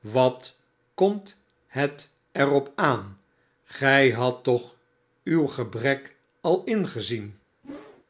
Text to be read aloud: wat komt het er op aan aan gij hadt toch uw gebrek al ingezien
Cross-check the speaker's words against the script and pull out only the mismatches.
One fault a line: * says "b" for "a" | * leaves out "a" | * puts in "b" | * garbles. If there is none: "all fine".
* leaves out "aan"